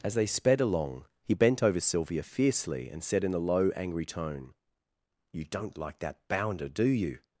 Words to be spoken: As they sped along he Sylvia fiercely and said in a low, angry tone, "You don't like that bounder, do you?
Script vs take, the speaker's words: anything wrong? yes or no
yes